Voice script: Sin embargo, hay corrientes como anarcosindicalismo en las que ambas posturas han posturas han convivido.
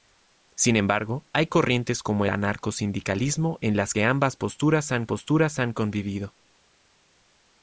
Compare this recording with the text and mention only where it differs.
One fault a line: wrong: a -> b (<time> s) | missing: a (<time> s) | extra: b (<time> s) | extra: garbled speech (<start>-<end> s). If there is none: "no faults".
no faults